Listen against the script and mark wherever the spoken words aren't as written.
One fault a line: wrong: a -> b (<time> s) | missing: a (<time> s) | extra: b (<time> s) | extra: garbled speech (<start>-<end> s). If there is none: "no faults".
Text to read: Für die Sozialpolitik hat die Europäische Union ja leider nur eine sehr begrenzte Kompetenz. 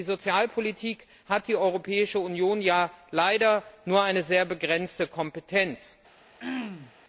no faults